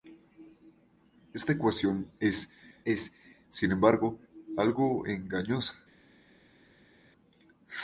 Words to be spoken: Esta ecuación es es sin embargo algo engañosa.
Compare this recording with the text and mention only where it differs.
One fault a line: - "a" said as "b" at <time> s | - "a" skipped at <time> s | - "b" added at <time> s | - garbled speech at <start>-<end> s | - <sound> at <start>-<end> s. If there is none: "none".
none